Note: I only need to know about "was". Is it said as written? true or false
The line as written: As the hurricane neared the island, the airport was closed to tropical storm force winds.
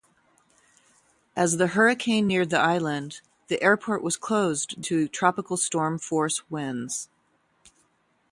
true